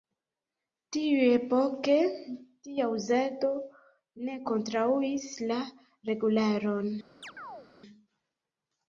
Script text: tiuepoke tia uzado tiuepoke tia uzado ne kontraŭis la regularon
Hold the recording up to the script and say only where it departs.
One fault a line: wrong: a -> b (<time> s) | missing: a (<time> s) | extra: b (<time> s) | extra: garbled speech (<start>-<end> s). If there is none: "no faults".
missing: tiuepoke tia uzado (3.5 s)